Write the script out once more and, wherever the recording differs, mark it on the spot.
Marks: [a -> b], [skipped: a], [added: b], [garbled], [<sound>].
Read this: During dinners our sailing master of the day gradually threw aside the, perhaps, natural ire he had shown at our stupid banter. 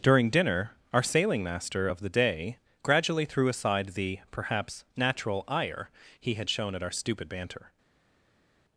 During [dinners -> dinner] our sailing master of the day gradually threw aside the, perhaps, natural ire he had shown at our stupid banter.